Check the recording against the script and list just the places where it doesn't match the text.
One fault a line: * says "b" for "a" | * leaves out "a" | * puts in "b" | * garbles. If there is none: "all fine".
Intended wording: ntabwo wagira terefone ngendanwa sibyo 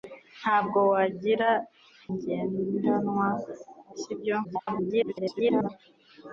* leaves out "terefone"
* garbles